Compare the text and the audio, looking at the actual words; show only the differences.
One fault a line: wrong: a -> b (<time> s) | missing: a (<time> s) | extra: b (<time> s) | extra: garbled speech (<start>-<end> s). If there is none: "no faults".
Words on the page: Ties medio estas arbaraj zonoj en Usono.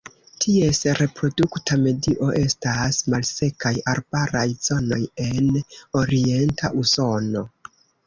extra: reprodukta (1.0 s)
extra: malsekaj (3.1 s)
extra: orienta (6.0 s)